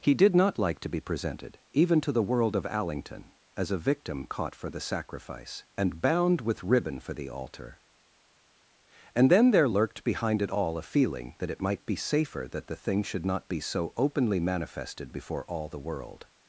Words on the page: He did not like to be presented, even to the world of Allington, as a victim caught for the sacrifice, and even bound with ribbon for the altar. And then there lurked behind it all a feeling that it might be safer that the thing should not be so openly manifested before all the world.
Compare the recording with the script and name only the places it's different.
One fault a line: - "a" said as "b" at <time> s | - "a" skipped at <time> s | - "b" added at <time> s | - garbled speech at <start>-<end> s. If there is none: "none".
- "even" skipped at 6.0 s